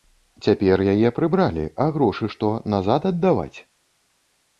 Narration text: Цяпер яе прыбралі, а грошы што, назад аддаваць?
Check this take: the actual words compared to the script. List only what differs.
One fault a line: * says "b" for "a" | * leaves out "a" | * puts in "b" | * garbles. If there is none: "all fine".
all fine